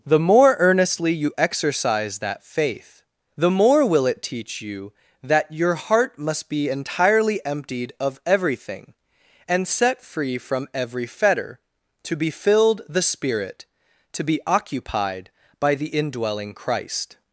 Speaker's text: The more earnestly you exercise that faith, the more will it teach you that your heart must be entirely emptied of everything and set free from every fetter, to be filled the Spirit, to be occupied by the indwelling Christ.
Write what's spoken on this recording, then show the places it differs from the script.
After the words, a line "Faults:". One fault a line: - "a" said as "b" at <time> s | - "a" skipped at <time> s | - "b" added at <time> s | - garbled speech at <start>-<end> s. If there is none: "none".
The more earnestly you exercise that faith, the more will it teach you that your heart must be entirely emptied of everything and set free from every fetter, to be filled the Spirit, to be occupied by the indwelling Christ.
Faults:
none